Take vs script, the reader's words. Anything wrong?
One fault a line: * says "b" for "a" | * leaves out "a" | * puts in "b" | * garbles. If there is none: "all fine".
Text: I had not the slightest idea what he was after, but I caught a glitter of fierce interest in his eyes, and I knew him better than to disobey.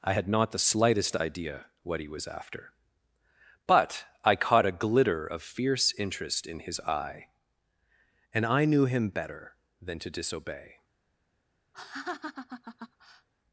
* says "eye" for "eyes"